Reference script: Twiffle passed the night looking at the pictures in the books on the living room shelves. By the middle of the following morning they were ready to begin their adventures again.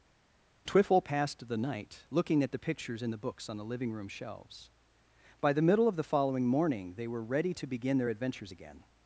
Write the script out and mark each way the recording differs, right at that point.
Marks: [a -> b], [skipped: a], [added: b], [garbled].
Twiffle passed the night looking at the pictures in the books on the living room shelves. By the middle of the following morning they were ready to begin their adventures again.